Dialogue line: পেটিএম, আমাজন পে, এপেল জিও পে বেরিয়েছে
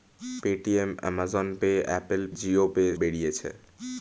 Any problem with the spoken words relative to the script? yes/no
no